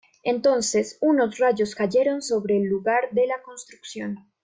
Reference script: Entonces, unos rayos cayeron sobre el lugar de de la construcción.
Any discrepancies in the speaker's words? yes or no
yes